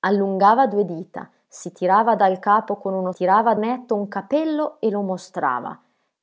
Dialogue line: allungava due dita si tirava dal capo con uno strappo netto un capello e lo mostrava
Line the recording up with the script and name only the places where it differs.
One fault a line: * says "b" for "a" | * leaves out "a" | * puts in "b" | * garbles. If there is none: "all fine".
* says "tirava" for "strappo"